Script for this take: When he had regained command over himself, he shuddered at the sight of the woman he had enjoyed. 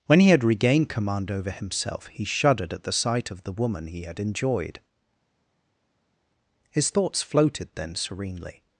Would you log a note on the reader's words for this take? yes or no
yes